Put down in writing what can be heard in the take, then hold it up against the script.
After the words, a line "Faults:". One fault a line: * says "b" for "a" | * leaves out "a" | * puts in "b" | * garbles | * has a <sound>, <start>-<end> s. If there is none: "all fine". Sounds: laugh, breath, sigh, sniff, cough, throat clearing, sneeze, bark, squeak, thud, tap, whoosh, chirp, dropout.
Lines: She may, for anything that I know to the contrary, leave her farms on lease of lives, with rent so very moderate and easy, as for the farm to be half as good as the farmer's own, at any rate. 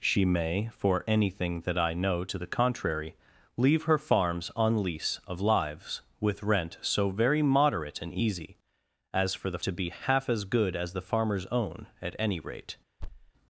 She may, for anything that I know to the contrary, leave her farms on lease of lives, with rent so very moderate and easy, as for the to be half as good as the farmer's own, at any rate.
Faults:
* leaves out "farm"
* has a thud, 13.0-13.3 s